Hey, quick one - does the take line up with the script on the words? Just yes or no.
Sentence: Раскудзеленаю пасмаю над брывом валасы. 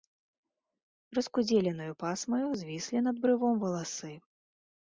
no